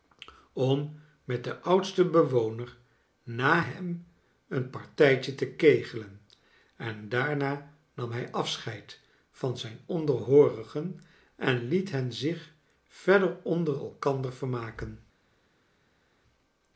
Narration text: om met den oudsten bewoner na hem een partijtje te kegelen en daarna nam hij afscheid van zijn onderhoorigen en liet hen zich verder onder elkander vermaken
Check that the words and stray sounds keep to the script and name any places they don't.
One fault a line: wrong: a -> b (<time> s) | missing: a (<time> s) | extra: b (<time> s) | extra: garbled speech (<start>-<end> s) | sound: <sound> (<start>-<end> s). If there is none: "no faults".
no faults